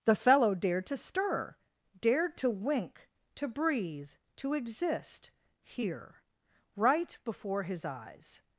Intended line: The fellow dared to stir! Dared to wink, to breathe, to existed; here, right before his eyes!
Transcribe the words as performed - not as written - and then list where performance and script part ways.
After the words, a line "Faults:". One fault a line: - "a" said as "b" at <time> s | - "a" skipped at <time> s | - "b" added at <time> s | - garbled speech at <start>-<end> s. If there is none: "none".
The fellow dared to stir! Dared to wink, to breathe, to exist; here, right before his eyes!
Faults:
- "existed" said as "exist" at 4.5 s